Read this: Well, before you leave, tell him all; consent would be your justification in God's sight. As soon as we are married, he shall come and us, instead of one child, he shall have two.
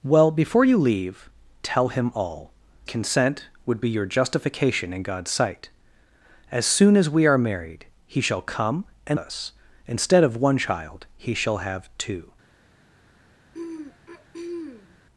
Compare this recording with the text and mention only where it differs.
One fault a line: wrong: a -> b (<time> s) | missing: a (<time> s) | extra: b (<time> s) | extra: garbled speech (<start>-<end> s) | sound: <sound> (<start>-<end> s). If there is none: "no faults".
sound: throat clearing (13.5-15.0 s)